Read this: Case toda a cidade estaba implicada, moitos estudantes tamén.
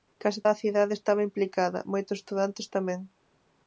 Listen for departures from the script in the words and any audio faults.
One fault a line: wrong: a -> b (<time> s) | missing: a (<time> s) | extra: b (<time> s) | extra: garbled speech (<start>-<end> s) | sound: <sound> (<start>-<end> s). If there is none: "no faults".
missing: toda (0.4 s)